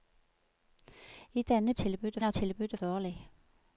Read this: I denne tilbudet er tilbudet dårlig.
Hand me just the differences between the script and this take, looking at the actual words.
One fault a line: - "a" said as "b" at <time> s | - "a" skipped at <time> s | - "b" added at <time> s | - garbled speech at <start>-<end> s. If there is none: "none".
none